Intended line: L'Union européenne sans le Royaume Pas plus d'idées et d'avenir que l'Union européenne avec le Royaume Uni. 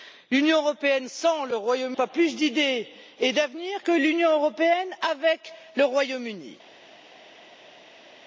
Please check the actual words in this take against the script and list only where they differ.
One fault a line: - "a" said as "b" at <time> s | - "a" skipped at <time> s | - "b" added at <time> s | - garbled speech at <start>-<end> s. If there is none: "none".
none